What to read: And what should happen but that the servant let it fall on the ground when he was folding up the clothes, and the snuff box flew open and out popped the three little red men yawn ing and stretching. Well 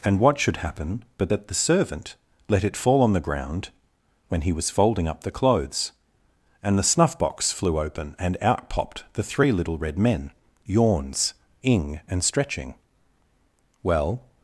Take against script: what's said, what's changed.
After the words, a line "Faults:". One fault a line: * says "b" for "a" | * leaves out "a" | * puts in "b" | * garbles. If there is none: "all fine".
And what should happen but that the servant let it fall on the ground when he was folding up the clothes, and the snuff box flew open and out popped the three little red men yawns ing and stretching. Well
Faults:
* says "yawns" for "yawn"